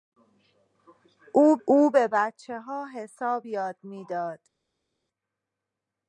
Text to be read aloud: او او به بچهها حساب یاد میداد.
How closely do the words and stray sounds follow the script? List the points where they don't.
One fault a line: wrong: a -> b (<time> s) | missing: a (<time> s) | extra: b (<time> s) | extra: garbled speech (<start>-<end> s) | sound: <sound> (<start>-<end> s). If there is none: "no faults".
no faults